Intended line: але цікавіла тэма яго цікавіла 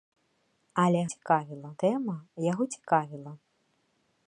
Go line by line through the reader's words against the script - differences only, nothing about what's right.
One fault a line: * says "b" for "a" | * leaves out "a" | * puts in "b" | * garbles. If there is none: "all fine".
all fine